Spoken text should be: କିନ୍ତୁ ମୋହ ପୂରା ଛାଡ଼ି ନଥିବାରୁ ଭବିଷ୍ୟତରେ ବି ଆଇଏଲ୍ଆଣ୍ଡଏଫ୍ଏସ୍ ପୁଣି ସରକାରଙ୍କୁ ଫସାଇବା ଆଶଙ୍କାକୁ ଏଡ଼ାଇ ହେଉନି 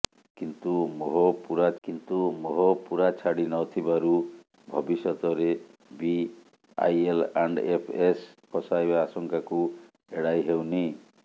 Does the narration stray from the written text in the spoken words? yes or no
yes